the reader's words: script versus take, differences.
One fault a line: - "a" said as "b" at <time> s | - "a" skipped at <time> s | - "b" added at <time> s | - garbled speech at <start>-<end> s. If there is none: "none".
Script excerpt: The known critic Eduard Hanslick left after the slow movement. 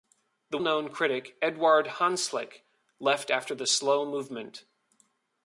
none